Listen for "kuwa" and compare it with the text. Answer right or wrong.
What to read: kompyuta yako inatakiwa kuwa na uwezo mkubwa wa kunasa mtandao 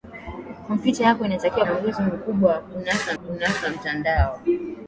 wrong